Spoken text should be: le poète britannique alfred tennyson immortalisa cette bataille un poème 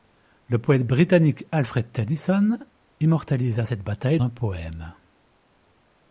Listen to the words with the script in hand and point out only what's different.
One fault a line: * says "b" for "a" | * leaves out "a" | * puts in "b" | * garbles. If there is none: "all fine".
all fine